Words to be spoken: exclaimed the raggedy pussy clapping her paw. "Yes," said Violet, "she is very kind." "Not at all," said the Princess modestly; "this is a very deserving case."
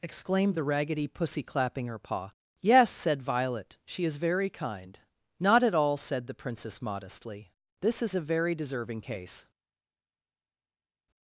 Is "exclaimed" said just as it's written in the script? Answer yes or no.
yes